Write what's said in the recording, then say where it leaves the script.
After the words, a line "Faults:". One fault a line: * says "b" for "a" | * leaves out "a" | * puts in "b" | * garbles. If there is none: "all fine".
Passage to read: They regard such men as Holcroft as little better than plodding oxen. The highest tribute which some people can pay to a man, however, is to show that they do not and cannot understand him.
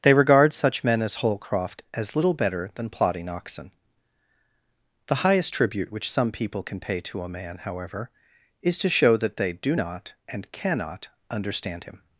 They regard such men as Holcroft as little better than plodding oxen. The highest tribute which some people can pay to a man, however, is to show that they do not and cannot understand him.
Faults:
all fine